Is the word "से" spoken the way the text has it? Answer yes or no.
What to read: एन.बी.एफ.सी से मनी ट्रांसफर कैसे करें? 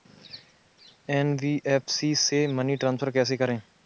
yes